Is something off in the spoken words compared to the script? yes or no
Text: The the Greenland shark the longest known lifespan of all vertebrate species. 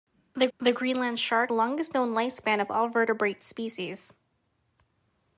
no